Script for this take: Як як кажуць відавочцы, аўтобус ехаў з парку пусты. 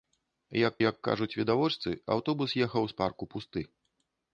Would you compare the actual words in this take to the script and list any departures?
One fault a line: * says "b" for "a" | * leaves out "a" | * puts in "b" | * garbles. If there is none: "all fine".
all fine